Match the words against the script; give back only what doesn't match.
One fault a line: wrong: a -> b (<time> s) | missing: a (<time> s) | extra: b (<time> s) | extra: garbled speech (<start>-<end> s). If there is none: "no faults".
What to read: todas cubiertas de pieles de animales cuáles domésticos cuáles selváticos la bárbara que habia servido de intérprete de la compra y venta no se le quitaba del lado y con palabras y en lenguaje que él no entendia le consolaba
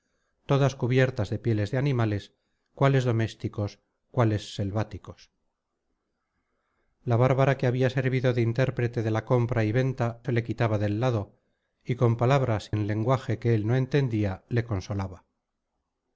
missing: no (10.2 s)
missing: y (12.7 s)